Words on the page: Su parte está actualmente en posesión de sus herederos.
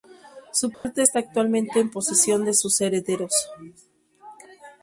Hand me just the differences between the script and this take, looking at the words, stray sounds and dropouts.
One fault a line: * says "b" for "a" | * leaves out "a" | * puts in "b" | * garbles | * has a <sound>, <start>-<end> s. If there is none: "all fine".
* has a dropout, 0.7-0.8 s